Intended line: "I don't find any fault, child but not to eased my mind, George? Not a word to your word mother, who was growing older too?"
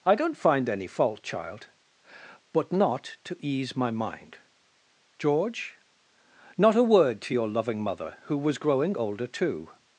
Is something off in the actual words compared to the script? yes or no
yes